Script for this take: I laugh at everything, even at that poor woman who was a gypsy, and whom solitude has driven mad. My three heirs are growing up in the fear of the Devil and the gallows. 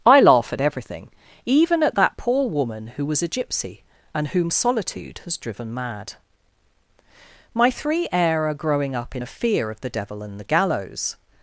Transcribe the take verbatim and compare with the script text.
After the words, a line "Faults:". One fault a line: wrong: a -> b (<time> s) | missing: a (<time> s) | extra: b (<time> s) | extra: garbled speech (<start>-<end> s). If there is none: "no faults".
I laugh at everything, even at that poor woman who was a gypsy, and whom solitude has driven mad. My three heir are growing up in a fear of the Devil and the gallows.
Faults:
wrong: heirs -> heir (8.1 s)
wrong: the -> a (9.2 s)